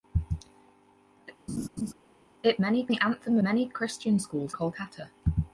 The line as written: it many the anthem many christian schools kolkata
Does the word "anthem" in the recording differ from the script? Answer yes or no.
no